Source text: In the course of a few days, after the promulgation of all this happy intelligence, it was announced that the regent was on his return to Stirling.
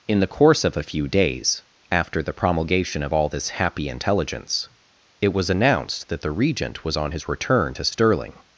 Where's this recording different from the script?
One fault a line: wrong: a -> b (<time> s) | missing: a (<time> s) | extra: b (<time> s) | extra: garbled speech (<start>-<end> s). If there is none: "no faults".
no faults